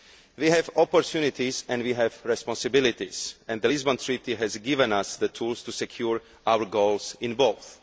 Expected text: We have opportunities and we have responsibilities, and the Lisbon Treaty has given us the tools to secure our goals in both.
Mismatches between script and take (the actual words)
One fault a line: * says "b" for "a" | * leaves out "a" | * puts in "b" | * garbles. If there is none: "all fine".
all fine